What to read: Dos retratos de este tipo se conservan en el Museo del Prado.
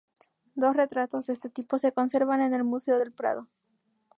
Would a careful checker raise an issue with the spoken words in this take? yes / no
no